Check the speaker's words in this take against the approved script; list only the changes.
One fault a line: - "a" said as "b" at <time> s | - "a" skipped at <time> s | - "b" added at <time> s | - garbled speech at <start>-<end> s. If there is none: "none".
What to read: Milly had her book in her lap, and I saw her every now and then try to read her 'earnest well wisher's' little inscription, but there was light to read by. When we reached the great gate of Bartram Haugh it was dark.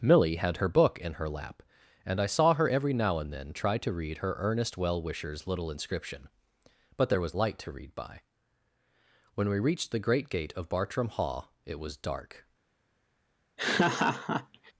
none